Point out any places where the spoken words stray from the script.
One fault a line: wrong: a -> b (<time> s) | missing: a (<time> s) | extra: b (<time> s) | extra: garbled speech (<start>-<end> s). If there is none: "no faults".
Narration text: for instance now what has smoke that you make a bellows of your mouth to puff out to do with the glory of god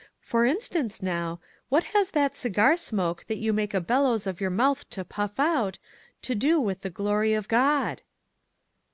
extra: that cigar (2.1 s)